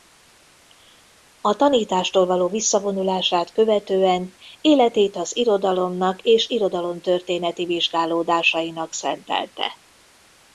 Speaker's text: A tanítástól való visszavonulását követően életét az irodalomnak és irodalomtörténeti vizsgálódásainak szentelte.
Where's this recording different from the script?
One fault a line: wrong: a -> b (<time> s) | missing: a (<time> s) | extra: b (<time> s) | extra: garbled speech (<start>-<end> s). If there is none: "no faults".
no faults